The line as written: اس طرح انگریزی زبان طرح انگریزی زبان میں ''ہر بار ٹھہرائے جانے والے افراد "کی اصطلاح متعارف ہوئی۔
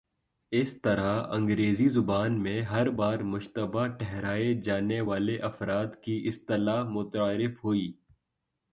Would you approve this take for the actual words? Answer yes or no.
no